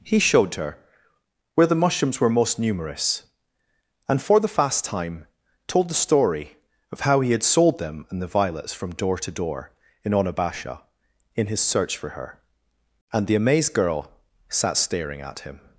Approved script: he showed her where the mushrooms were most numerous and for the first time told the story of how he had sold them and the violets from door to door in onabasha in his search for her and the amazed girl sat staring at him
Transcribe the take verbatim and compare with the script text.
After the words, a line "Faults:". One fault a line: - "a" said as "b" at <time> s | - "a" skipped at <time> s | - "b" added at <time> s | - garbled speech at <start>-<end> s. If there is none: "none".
he showed her where the mushrooms were most numerous and for the fast time told the story of how he had sold them and the violets from door to door in onabasha in his search for her and the amazed girl sat staring at him
Faults:
- "first" said as "fast" at 4.5 s